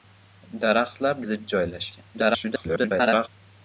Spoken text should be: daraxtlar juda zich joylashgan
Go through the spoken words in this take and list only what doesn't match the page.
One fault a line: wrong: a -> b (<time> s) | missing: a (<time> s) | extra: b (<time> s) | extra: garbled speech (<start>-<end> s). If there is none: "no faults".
missing: juda (1.1 s)
extra: garbled speech (2.1-3.3 s)